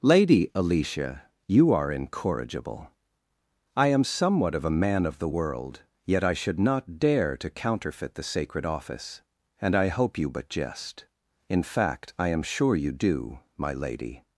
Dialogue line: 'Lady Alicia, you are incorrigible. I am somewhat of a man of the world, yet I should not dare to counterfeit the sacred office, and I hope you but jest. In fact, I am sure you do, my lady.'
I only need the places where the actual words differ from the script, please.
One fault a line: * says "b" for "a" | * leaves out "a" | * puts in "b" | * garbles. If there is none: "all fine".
all fine